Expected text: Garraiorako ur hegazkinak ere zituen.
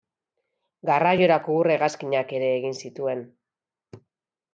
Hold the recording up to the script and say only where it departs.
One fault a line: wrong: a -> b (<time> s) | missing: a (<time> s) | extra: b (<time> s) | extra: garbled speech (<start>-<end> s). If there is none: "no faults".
extra: egin (2.5 s)